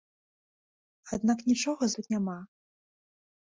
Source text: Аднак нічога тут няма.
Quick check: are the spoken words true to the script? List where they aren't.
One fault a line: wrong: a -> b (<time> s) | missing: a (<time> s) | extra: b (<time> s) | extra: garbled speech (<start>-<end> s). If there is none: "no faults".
no faults